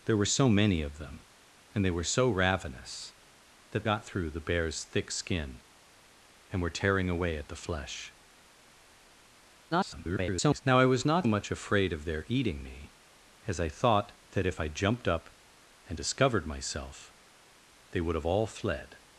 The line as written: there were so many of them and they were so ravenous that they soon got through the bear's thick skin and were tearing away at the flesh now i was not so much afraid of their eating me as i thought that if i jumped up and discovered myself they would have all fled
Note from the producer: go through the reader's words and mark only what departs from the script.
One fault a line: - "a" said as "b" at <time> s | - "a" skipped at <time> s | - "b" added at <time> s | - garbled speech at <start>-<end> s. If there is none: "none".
- "they soon" skipped at 3.9 s
- garbled speech at 9.7-10.6 s
- "so" skipped at 11.3 s